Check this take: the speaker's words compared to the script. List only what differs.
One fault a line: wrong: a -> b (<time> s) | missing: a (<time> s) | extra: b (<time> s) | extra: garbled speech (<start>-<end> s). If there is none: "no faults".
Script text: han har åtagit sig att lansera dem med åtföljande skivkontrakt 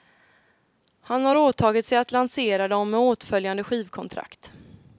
no faults